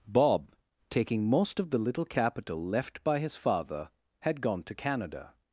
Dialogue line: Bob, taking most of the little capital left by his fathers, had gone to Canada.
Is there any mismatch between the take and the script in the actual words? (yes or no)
yes